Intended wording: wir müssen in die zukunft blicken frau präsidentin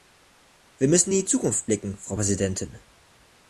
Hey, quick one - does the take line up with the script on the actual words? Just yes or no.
yes